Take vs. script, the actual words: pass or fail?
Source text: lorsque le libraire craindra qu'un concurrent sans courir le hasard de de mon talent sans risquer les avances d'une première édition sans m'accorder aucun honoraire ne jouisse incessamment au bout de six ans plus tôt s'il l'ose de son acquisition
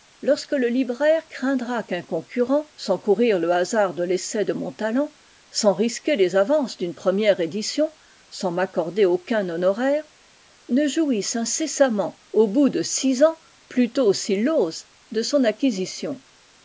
fail